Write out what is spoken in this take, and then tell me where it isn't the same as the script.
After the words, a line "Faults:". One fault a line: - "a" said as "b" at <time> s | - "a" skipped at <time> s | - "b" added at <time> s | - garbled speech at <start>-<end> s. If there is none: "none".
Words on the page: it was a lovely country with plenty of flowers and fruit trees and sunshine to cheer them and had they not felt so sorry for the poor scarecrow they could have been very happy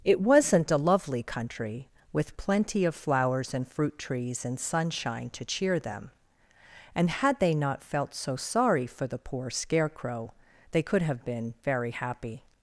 it wasn't a lovely country with plenty of flowers and fruit trees and sunshine to cheer them and had they not felt so sorry for the poor scarecrow they could have been very happy
Faults:
- "was" said as "wasn't" at 0.2 s